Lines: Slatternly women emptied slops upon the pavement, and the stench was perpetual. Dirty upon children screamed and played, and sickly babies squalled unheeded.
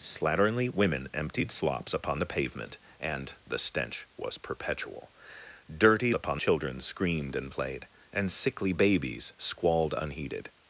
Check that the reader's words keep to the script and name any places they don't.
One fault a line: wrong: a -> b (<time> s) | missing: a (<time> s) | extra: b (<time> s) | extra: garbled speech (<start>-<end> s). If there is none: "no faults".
no faults